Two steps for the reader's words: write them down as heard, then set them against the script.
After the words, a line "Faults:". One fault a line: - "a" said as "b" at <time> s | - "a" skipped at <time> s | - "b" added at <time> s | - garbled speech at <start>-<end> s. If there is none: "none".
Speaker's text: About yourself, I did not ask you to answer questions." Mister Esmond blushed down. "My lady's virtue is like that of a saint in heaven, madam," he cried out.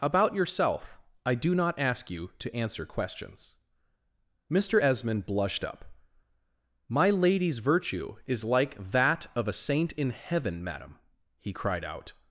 About yourself, I do not ask you to answer questions." Mister Esmond blushed up. "My lady's virtue is like that of a saint in heaven, madam," he cried out.
Faults:
- "did" said as "do" at 1.4 s
- "down" said as "up" at 5.6 s